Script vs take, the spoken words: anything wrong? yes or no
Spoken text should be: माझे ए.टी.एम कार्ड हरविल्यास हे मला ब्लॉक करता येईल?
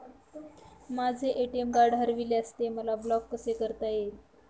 yes